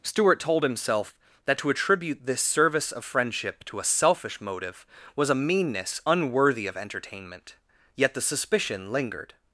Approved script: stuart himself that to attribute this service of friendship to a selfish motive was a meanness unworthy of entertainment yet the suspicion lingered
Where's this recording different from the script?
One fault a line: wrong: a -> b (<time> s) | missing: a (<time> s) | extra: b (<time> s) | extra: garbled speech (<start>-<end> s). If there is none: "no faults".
extra: told (0.4 s)